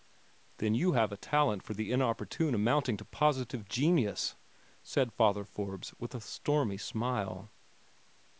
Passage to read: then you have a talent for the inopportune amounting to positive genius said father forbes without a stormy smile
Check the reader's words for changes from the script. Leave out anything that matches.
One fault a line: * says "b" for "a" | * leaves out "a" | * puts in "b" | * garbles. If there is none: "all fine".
* says "with" for "without"